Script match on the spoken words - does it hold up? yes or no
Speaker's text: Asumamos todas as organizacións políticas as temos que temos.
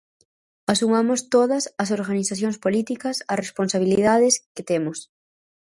no